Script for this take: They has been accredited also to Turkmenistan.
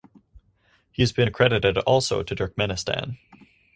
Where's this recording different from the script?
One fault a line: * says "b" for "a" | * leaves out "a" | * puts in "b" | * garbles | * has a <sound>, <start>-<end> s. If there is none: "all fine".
* says "He" for "They"